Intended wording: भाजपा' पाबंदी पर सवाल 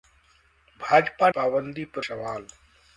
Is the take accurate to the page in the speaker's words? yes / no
yes